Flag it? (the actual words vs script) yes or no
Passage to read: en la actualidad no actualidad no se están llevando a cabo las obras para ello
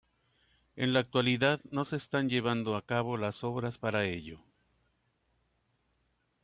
yes